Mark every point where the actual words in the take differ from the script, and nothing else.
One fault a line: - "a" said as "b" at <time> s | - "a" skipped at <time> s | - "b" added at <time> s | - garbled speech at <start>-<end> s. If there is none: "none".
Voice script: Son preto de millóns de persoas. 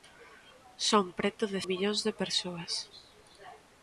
none